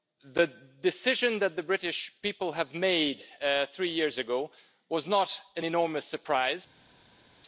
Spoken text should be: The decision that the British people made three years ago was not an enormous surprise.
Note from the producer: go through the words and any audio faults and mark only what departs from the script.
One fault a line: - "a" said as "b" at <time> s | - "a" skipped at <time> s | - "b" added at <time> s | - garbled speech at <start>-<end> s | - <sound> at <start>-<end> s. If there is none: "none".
none